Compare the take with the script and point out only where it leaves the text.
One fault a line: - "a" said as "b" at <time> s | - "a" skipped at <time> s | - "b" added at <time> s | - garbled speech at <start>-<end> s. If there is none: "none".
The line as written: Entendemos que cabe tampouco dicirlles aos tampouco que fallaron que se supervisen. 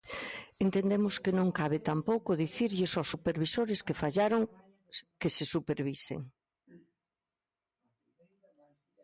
- "non" added at 1.4 s
- "tampouco" said as "supervisores" at 3.1 s